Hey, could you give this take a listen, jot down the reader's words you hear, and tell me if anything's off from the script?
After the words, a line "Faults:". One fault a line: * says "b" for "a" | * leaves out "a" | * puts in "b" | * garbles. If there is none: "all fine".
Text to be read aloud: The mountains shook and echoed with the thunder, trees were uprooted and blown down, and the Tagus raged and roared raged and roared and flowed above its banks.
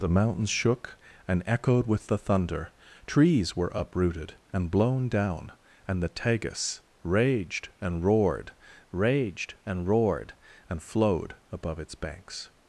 The mountains shook and echoed with the thunder, trees were uprooted and blown down, and the Tagus raged and roared raged and roared and flowed above its banks.
Faults:
all fine